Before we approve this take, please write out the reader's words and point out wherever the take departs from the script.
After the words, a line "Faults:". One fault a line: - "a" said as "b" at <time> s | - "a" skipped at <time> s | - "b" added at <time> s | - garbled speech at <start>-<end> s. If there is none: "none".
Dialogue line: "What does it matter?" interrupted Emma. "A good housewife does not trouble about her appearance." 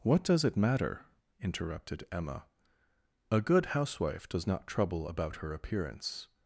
"What does it matter?" interrupted Emma. "A good housewife does not trouble about her appearance."
Faults:
none